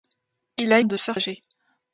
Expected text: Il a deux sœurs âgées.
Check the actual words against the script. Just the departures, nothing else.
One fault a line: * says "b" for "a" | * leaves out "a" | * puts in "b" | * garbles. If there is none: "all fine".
all fine